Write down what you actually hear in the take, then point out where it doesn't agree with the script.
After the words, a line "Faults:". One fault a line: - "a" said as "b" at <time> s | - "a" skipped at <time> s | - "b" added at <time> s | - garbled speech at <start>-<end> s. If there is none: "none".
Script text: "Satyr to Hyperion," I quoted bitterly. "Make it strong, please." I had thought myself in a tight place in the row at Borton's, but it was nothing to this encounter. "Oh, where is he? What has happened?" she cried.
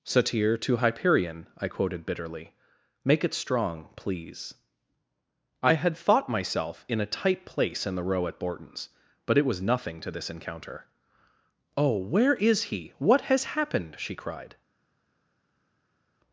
"Satyr to Hyperion," I quoted bitterly. "Make it strong, please." I had thought myself in a tight place in the row at Borton's, but it was nothing to this encounter. "Oh, where is he? What has happened?" she cried.
Faults:
none